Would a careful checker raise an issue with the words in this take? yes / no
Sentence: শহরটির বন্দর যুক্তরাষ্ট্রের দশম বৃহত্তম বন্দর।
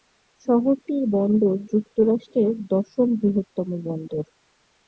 no